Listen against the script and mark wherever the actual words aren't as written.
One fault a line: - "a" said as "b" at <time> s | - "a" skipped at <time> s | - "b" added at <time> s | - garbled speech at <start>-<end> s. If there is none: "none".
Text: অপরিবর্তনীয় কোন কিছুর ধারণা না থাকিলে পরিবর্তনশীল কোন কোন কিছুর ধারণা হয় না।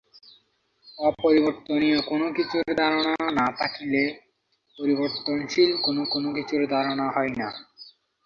none